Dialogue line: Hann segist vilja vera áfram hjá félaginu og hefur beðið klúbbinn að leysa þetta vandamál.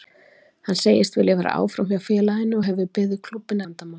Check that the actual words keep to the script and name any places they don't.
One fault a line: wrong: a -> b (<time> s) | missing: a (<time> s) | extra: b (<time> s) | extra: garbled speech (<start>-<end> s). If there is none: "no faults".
missing: að leysa þetta (3.7 s)